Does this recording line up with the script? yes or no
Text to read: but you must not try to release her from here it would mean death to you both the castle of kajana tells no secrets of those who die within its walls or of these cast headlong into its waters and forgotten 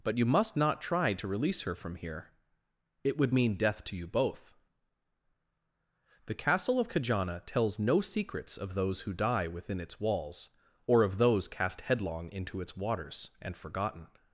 no